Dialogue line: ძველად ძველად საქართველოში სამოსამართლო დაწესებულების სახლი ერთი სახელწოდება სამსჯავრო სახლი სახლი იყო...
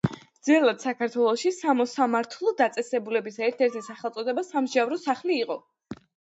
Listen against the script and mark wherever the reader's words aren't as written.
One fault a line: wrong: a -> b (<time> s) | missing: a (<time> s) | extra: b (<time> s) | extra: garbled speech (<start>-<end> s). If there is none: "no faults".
missing: ძველად (0.8 s)
wrong: სახლი -> ერთ (3.5 s)
missing: სახლი (5.4 s)